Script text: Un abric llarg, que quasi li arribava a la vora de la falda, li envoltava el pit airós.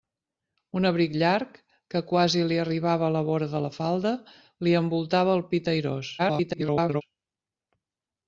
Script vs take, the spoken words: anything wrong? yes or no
yes